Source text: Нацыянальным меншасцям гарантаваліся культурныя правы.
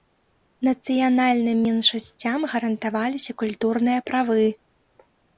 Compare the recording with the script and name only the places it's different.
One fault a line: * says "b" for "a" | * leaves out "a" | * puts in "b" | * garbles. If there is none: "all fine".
all fine